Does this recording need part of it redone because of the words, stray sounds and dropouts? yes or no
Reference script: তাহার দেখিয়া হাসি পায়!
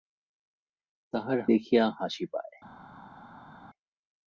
no